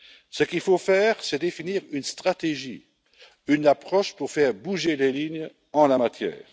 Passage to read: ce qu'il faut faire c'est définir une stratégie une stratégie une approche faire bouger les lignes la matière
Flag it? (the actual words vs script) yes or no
yes